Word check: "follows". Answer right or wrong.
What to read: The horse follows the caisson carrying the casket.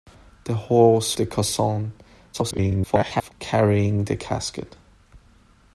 wrong